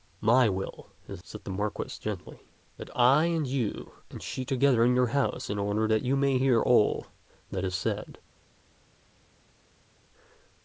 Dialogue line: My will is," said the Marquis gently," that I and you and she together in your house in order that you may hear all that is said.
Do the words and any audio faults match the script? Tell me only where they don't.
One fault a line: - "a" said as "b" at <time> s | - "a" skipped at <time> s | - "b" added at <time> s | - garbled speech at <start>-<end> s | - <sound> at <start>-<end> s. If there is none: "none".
none